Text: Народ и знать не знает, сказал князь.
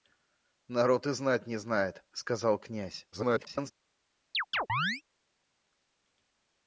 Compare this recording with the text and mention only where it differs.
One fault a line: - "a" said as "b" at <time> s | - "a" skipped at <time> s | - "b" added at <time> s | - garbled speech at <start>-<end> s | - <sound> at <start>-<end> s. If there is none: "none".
- garbled speech at 3.1-3.7 s
- chirp at 4.3-5.0 s